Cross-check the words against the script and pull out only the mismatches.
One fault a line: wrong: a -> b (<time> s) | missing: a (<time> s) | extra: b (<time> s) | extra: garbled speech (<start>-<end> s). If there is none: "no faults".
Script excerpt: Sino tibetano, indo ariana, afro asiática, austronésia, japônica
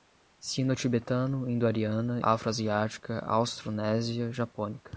no faults